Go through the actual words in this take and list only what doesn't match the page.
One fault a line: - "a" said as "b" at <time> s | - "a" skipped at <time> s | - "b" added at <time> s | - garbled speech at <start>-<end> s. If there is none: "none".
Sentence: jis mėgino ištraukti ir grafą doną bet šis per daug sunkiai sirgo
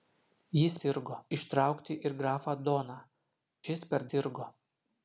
- "mėgino" said as "sirgo" at 0.8 s
- "bet" skipped at 3.0 s
- "daug sunkiai" skipped at 4.1 s